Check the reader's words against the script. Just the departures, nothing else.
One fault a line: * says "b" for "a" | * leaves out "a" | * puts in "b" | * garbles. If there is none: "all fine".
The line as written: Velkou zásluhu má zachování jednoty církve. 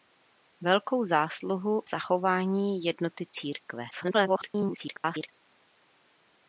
* leaves out "má"
* garbles